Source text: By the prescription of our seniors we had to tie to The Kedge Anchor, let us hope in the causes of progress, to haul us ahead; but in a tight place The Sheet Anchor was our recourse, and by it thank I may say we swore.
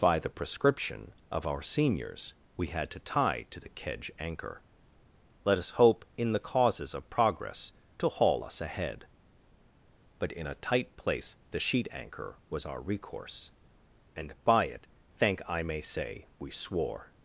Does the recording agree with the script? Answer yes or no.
yes